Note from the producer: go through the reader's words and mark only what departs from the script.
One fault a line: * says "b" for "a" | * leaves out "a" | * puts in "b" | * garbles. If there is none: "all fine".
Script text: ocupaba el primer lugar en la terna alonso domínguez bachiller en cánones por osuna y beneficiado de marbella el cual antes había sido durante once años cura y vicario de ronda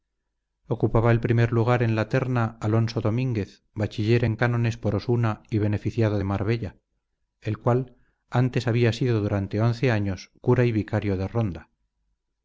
all fine